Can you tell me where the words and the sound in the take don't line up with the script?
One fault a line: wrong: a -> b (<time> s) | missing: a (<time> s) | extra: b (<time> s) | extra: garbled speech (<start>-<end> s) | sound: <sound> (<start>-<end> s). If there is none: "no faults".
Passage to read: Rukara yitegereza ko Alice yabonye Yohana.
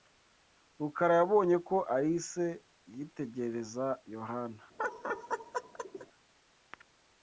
wrong: yitegereza -> yabonye (1.2 s)
wrong: yabonye -> yitegereza (3.0 s)
sound: laugh (4.8-6.1 s)